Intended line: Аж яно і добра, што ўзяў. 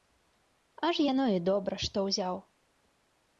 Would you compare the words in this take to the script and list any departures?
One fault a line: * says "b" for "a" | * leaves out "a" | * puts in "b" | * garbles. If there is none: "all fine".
all fine